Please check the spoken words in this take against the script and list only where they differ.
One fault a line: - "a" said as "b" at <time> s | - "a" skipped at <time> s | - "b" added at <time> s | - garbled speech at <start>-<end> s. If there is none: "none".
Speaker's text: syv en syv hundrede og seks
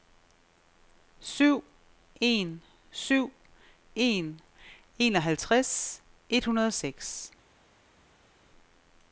- "en enoghalvtreds et" added at 4.0 s